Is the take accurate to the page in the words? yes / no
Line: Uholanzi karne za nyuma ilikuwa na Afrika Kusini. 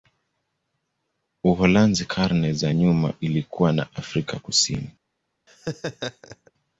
yes